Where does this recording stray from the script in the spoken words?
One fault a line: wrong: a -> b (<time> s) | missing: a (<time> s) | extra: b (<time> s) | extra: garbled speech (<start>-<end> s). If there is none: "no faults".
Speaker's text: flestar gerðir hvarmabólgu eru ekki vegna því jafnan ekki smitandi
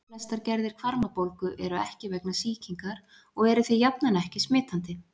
extra: sýkingar og eru (2.4 s)